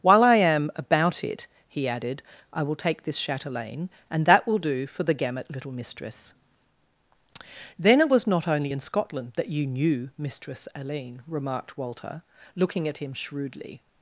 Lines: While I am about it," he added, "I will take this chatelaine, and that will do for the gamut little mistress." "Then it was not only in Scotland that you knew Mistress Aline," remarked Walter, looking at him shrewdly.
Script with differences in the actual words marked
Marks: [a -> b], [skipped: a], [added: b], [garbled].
While I am about it," he added, "I will take this chatelaine, and that will do for the gamut little mistress." "Then it was not only in Scotland that you knew Mistress Aline," remarked Walter, looking at him shrewdly.